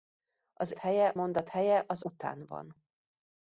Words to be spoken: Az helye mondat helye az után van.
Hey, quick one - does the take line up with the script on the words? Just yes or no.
yes